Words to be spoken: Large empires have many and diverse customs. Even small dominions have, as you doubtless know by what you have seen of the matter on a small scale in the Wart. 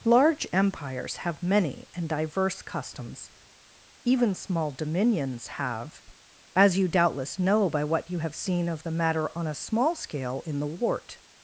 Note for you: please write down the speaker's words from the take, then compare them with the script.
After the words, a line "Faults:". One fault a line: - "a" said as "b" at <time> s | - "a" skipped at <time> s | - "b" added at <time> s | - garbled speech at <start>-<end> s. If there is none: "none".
Large empires have many and diverse customs. Even small dominions have, as you doubtless know by what you have seen of the matter on a small scale in the Wart.
Faults:
none